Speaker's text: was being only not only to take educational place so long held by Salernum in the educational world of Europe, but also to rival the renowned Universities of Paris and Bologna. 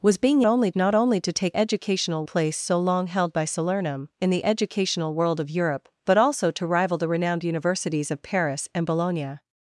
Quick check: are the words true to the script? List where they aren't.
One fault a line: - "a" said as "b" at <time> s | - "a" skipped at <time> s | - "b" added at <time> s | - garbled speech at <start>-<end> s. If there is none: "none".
none